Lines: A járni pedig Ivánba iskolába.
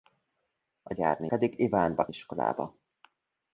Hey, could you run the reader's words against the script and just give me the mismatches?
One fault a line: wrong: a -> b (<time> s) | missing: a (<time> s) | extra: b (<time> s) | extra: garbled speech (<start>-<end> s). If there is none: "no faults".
no faults